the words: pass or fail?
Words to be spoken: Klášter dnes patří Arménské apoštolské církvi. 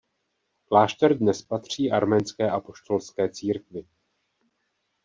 pass